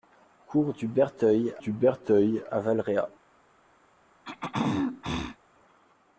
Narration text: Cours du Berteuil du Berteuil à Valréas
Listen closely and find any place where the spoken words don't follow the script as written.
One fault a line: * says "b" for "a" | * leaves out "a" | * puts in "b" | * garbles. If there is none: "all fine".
all fine